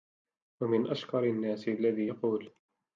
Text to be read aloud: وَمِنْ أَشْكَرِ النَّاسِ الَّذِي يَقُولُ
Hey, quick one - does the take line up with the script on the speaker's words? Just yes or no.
yes